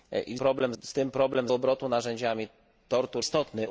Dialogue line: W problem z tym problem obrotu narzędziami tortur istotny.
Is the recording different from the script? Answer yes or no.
no